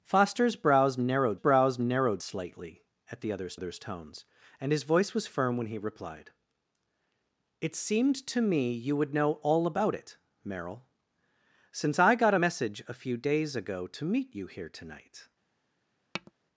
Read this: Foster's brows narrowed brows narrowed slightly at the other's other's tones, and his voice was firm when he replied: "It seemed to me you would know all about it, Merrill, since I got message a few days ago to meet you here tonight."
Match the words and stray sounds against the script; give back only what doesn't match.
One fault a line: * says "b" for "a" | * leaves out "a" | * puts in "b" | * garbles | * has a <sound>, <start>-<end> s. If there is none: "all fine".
* has a tap, 16.1-16.3 s